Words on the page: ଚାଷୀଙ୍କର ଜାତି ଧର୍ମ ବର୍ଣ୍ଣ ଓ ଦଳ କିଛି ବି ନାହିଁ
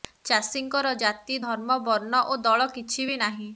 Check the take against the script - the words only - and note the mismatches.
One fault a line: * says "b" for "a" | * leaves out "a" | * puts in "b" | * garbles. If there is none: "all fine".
all fine